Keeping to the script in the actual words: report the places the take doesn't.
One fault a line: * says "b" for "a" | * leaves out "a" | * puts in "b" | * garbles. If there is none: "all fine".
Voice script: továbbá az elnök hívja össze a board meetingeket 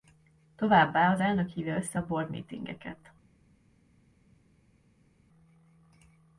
all fine